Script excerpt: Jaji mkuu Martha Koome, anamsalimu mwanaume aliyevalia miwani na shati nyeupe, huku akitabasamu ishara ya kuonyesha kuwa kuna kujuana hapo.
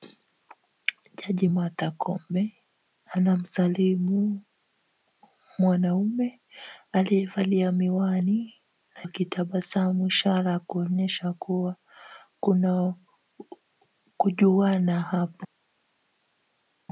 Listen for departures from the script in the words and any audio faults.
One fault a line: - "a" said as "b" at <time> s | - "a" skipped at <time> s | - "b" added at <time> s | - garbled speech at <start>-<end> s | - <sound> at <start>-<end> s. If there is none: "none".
- "mkuu" skipped at 1.5 s
- "shati nyeupe huku" skipped at 9.1 s